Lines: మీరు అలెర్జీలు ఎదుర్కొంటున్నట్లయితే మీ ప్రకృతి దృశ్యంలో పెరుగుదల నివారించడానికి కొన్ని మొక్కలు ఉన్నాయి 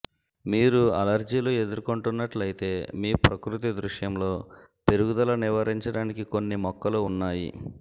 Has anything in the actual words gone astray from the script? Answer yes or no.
no